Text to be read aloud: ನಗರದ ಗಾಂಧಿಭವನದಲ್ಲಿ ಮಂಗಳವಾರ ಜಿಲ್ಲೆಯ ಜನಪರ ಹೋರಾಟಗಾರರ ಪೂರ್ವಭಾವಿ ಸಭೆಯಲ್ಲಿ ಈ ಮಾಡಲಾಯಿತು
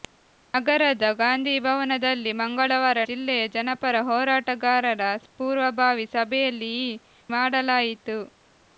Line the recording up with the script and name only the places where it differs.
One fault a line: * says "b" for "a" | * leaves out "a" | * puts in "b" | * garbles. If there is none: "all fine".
all fine